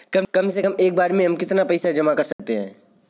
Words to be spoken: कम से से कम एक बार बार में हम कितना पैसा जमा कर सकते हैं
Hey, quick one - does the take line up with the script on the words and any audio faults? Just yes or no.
no